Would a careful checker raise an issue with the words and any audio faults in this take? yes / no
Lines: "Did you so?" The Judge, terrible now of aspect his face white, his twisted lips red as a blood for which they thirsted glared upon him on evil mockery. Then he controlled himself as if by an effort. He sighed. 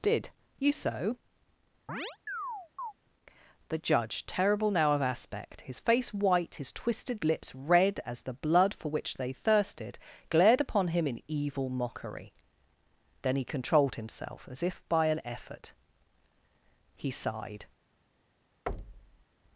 yes